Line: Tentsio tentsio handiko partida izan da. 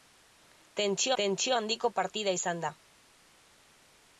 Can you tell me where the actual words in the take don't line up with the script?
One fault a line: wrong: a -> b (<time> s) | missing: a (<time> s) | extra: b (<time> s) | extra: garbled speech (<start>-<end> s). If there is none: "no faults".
no faults